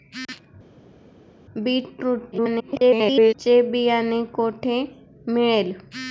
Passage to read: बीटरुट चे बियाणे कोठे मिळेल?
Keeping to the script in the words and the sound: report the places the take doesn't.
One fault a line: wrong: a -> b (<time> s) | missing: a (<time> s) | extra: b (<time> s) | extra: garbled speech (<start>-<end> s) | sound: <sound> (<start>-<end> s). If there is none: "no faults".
extra: garbled speech (2.3-3.3 s)